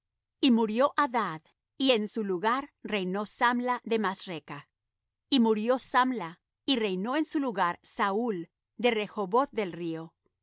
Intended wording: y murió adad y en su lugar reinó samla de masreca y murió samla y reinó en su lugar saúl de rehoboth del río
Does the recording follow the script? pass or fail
pass